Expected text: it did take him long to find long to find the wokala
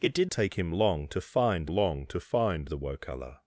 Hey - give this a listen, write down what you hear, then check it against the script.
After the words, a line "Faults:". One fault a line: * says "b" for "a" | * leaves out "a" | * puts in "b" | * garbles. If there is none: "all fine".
it did take him long to find long to find the wokala
Faults:
all fine